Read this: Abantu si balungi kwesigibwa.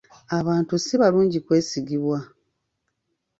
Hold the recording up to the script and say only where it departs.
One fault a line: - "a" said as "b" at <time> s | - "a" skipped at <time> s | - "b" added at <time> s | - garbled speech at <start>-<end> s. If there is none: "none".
none